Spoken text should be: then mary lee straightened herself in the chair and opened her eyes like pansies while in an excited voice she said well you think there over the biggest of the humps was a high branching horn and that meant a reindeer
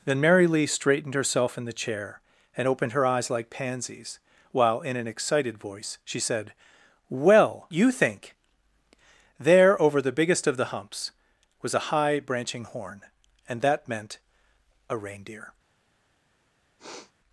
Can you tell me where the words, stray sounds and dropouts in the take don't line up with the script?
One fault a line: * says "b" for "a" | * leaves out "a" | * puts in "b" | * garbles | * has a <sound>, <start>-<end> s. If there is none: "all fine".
* has a sniff, 16.8-17.1 s